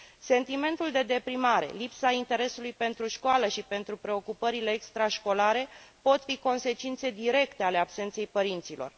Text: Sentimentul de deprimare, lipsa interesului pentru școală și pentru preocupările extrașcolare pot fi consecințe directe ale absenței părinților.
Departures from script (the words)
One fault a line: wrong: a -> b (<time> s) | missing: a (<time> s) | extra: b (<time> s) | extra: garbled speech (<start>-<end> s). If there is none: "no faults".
no faults